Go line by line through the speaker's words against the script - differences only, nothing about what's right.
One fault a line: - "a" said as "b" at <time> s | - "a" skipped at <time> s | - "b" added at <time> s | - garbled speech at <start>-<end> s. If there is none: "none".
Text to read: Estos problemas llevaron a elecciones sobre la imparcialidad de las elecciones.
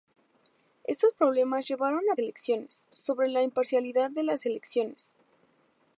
none